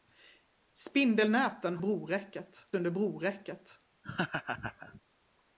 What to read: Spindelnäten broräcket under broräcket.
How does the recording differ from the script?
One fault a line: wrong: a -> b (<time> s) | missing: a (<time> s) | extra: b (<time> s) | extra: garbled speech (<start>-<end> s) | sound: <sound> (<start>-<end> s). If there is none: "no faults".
sound: laugh (4.0-5.0 s)